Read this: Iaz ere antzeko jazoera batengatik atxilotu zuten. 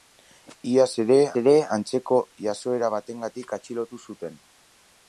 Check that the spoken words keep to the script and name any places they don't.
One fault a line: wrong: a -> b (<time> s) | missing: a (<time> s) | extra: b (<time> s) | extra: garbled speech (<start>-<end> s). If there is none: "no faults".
extra: ere (1.4 s)